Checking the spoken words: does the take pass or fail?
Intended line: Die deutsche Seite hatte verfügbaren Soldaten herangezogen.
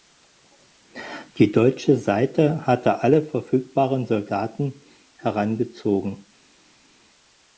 fail